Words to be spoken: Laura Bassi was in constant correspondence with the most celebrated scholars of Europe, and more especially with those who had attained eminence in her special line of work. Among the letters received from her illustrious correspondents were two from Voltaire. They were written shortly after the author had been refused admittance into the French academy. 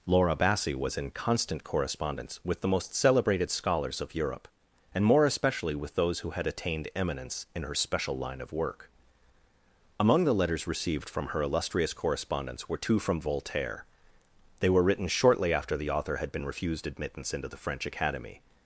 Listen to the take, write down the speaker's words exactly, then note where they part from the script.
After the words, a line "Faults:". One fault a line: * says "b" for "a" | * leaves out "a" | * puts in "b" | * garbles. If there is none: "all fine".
Laura Bassi was in constant correspondence with the most celebrated scholars of Europe, and more especially with those who had attained eminence in her special line of work. Among the letters received from her illustrious correspondents were two from Voltaire. They were written shortly after the author had been refused admittance into the French academy.
Faults:
all fine